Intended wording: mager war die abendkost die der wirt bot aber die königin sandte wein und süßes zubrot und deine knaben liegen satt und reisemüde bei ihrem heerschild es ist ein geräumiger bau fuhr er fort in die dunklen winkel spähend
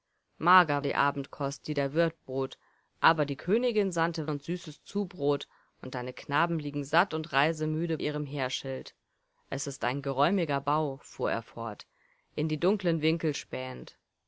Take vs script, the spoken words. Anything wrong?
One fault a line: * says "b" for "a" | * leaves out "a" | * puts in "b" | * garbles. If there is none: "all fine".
* leaves out "war"
* leaves out "wein"
* leaves out "bei"